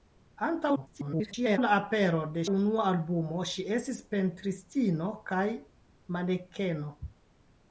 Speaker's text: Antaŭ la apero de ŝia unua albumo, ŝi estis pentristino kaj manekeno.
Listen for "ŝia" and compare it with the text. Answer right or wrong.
wrong